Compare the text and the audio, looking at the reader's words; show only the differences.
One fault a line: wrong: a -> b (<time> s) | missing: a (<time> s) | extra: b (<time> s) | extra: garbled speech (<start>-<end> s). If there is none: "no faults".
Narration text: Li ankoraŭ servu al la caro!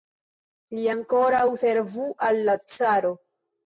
no faults